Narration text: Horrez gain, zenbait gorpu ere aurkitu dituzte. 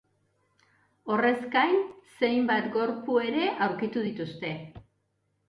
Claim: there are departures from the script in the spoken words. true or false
false